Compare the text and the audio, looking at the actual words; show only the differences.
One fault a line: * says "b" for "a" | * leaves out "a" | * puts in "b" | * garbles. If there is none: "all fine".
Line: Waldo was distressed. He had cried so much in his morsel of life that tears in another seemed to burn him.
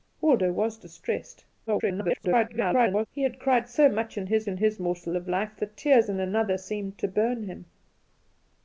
* garbles
* puts in "in his"